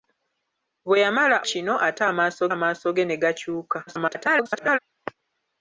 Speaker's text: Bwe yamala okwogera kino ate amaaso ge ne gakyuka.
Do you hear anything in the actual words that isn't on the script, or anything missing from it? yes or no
yes